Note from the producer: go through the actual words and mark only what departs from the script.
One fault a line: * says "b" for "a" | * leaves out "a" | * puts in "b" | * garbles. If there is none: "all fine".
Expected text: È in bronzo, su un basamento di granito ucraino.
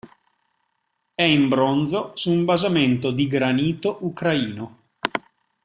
all fine